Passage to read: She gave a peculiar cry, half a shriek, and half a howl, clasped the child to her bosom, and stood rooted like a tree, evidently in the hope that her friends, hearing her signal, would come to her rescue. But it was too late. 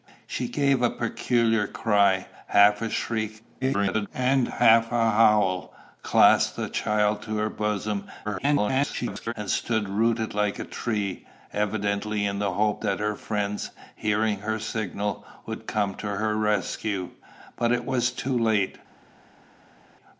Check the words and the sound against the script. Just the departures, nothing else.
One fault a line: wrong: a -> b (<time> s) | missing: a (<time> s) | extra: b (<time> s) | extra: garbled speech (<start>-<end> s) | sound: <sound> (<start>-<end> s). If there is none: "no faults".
extra: garbled speech (3.6-4.1 s)
extra: garbled speech (8.2-9.3 s)